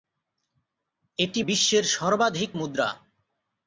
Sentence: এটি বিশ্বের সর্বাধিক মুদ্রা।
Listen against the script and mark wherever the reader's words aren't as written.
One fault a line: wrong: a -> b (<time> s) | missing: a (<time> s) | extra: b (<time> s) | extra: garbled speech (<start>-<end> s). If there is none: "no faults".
no faults